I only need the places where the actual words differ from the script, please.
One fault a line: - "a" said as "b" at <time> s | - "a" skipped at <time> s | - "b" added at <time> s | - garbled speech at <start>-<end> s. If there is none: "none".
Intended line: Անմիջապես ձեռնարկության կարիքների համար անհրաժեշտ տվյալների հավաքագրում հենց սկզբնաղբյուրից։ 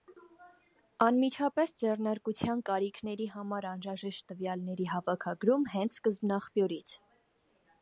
none